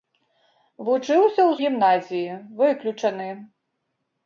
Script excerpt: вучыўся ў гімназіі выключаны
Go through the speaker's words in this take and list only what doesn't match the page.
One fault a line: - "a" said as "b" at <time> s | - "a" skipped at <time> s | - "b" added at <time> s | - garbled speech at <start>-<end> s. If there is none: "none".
none